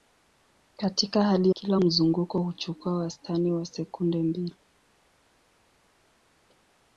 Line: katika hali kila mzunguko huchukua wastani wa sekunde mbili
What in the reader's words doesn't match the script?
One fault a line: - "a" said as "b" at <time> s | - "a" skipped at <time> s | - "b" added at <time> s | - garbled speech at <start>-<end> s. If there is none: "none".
none